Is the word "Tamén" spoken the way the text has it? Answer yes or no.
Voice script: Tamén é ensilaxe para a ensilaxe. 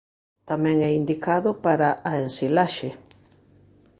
yes